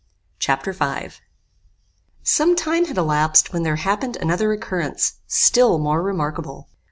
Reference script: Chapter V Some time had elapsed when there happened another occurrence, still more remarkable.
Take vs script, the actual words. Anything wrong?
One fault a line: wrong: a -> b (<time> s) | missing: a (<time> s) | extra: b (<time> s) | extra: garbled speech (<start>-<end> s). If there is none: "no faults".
no faults